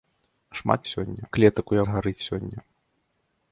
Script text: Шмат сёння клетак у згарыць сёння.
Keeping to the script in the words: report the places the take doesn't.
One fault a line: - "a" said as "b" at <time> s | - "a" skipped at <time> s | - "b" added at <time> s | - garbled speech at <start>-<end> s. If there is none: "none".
none